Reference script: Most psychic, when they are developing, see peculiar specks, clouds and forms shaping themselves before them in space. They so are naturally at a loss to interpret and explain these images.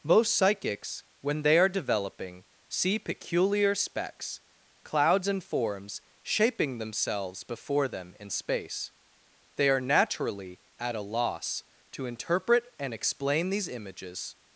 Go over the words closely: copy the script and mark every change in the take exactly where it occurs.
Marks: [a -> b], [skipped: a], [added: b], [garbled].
Most [psychic, -> psychics] when they are developing, see peculiar specks, clouds and forms shaping themselves before them in space. They [skipped: so] are naturally at a loss to interpret and explain these images.